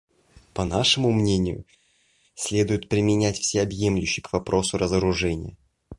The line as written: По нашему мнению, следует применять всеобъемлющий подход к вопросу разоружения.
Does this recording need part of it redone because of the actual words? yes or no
yes